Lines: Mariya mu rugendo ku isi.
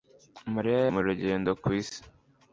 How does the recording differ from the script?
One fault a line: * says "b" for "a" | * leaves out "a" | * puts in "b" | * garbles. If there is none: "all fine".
all fine